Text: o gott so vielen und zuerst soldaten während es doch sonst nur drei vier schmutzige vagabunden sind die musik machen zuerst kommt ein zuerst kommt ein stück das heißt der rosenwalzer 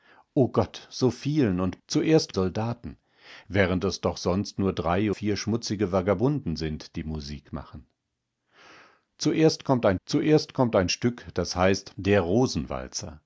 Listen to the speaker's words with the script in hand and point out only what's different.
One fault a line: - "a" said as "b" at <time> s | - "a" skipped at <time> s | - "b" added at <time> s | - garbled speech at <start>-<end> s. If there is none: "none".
none